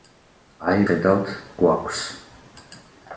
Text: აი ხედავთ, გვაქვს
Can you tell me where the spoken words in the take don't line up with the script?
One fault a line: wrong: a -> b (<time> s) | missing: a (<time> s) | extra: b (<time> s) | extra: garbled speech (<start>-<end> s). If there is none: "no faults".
no faults